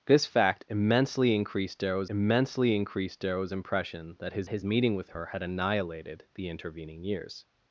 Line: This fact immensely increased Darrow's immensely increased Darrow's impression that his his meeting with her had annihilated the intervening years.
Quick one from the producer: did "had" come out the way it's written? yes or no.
yes